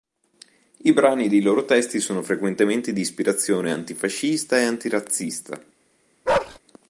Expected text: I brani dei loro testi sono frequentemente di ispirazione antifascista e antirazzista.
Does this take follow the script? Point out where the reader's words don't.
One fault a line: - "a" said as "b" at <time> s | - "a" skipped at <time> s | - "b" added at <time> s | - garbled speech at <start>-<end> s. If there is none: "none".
none